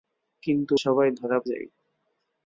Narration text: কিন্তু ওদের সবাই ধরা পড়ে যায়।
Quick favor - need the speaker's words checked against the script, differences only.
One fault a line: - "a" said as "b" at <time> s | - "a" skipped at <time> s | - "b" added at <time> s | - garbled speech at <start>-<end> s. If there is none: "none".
- "ওদের" skipped at 0.7 s
- "পড়ে" skipped at 1.4 s